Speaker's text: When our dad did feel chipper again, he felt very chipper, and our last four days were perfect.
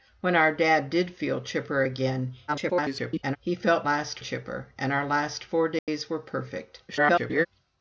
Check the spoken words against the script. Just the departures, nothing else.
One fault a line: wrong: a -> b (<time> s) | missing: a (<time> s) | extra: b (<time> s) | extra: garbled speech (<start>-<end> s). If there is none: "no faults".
extra: garbled speech (2.5-3.4 s)
wrong: very -> last (3.8 s)
extra: garbled speech (6.9-7.5 s)